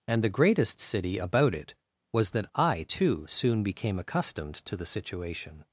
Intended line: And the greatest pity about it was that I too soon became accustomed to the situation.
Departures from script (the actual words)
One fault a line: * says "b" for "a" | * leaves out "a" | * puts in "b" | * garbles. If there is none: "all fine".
* says "city" for "pity"